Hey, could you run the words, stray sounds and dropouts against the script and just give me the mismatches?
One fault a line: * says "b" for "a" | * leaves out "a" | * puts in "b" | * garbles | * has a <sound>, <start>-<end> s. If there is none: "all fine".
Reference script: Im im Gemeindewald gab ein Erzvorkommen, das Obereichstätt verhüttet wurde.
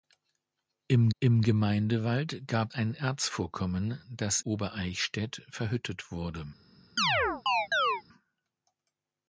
* has a chirp, 7.0-8.0 s